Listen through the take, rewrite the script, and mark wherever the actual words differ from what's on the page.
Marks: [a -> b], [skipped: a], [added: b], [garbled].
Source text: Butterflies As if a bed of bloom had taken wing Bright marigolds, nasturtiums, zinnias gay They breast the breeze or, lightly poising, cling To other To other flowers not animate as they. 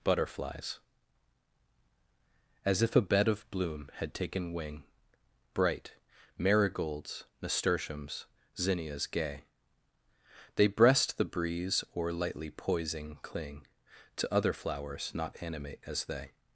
Butterflies As if a bed of bloom had taken wing Bright marigolds, nasturtiums, zinnias gay They breast the breeze or, lightly poising, cling To other [skipped: To other] flowers not animate as they.